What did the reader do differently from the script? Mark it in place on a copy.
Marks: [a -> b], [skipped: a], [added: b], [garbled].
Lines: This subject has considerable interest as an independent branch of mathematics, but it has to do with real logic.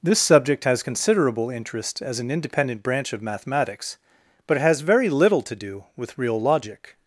This subject has considerable interest as an independent branch of mathematics, but it has [added: very little] to do with real logic.